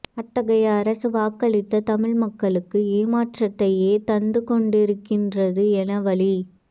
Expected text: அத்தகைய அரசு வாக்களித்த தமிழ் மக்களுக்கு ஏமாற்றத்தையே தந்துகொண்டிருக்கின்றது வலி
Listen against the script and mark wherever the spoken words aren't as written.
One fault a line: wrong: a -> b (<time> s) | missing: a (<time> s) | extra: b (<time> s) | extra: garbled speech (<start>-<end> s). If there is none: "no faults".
extra: என (5.8 s)